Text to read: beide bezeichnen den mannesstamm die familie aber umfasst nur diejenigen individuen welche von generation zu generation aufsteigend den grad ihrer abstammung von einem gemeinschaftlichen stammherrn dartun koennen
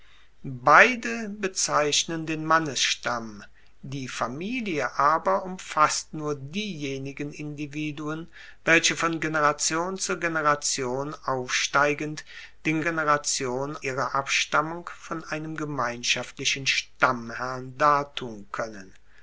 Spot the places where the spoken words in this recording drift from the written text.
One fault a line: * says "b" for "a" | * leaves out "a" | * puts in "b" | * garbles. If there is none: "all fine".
* says "generation" for "grad"